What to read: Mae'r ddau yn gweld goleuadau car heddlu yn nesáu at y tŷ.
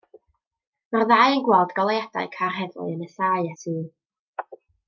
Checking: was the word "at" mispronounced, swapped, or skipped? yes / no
yes